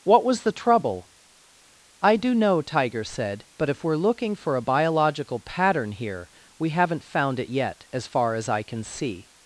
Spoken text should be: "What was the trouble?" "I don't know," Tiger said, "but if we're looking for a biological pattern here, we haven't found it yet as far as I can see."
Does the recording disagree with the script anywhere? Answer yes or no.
yes